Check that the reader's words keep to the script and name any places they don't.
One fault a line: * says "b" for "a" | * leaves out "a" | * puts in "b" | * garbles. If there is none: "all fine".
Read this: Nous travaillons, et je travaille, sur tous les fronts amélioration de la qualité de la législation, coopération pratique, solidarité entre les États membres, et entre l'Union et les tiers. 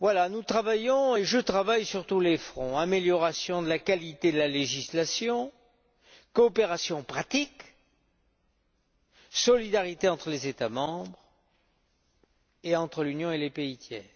* puts in "pays"